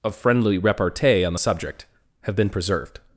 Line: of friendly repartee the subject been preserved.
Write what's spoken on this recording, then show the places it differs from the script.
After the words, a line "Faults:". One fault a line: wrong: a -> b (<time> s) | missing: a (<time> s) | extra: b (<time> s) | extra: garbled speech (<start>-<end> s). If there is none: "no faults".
of friendly repartee on the subject have been preserved.
Faults:
extra: on (1.2 s)
extra: have (2.2 s)